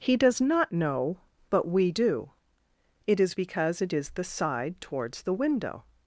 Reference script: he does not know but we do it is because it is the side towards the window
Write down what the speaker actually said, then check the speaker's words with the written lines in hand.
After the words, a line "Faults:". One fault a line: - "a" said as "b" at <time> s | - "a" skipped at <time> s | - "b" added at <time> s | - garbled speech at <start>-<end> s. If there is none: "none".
he does not know but we do it is because it is the side towards the window
Faults:
none